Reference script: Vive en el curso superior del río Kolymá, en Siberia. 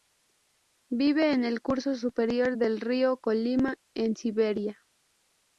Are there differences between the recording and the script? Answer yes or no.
no